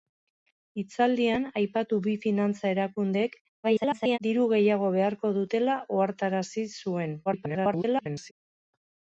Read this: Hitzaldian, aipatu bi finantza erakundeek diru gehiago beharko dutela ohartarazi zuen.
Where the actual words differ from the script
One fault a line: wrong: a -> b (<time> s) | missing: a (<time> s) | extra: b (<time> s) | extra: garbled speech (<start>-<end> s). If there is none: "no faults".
extra: garbled speech (3.6-4.2 s)
extra: garbled speech (7.3-8.3 s)